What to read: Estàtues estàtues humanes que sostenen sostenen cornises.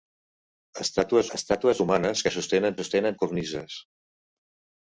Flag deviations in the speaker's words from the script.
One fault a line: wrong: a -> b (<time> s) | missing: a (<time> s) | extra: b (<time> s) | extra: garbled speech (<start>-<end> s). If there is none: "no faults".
no faults